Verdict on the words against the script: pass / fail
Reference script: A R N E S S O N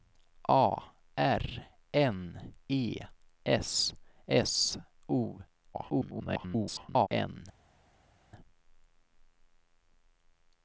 fail